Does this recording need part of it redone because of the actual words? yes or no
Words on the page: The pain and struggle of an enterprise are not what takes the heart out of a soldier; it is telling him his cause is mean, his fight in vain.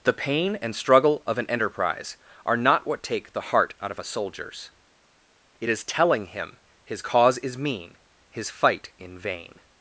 yes